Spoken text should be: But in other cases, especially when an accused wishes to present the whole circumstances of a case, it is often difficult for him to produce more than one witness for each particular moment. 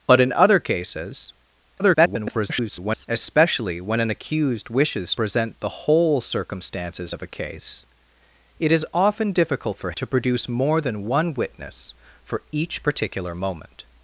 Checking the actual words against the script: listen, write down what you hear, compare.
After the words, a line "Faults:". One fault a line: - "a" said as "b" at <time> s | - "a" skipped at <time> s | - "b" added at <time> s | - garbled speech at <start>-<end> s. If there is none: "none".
But in other cases, [garbled] especially when an accused wishes present the whole circumstances of a case, it is often difficult for to produce more than one witness for each particular moment.
Faults:
- garbled speech at 1.8-3.1 s
- "to" skipped at 5.1 s
- "him" skipped at 9.9 s